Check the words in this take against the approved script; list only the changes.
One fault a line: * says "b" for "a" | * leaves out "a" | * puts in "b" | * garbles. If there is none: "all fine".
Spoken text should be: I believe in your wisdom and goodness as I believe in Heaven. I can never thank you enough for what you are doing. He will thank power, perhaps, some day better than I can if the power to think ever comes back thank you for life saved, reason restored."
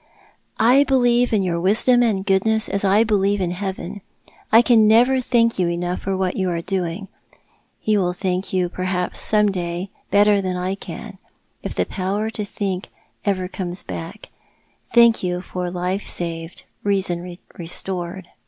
* says "you" for "power"